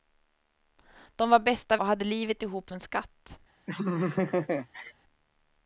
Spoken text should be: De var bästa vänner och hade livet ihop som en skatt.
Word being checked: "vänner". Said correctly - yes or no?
no